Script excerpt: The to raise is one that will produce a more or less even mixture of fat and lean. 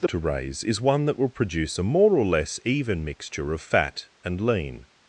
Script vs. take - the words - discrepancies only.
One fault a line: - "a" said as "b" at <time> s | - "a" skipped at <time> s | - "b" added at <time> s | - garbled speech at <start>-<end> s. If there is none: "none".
none